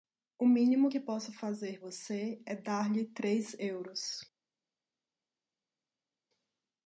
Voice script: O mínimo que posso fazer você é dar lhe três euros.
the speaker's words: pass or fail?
pass